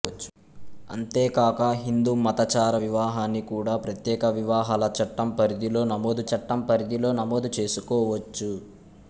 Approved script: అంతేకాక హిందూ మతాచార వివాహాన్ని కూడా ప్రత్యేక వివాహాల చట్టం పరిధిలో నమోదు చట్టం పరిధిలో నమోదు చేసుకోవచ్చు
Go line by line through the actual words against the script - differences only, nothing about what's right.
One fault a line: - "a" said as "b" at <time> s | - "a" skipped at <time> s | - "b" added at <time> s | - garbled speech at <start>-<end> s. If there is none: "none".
none